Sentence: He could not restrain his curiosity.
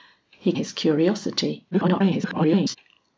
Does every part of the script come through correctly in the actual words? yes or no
no